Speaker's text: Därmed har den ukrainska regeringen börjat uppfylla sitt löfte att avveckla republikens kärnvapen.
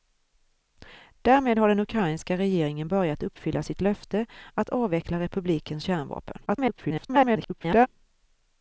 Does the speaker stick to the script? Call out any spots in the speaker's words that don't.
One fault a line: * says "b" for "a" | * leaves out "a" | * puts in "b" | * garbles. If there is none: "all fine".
* garbles